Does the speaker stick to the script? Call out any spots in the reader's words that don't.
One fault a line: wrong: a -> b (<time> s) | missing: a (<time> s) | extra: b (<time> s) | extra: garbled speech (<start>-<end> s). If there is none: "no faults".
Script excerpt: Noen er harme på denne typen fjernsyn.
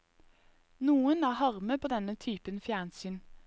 no faults